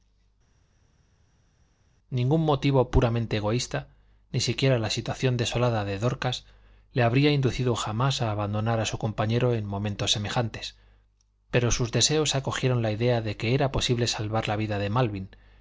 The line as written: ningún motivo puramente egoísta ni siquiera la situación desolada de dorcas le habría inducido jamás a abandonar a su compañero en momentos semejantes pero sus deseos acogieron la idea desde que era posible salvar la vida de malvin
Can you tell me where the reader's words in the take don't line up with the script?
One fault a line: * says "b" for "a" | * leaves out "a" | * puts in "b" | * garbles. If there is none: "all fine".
* says "de" for "desde"